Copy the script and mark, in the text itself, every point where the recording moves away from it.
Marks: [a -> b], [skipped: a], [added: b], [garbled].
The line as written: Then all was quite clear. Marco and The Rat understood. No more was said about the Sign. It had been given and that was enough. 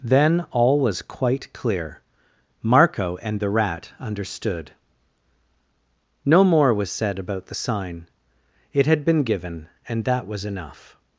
Then all was quite clear. Marco and The Rat understood. No more was said about the Sign. It had been given and that was enough.